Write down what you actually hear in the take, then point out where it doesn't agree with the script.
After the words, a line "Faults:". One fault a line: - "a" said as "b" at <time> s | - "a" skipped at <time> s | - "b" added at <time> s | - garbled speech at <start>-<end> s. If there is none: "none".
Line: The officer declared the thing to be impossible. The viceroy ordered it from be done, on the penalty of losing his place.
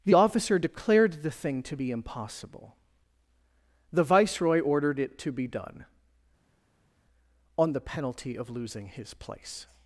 The officer declared the thing to be impossible. The viceroy ordered it to be done, on the penalty of losing his place.
Faults:
- "from" said as "to" at 5.2 s